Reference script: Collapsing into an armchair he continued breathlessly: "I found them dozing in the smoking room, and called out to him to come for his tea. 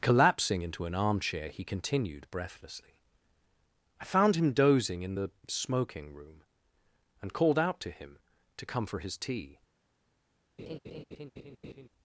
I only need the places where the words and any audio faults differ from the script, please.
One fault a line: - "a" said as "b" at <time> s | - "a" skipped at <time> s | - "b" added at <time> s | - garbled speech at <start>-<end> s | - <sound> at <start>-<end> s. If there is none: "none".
- "them" said as "him" at 4.3 s
- laugh at 10.6-11.9 s